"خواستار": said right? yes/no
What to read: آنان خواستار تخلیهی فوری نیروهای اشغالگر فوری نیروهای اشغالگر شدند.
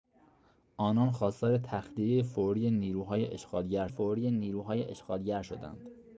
yes